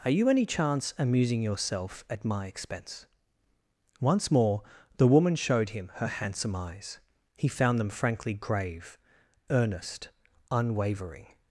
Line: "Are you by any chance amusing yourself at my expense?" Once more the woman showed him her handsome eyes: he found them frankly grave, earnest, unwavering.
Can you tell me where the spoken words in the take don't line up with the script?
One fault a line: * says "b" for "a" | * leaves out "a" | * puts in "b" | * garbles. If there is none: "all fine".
* leaves out "by"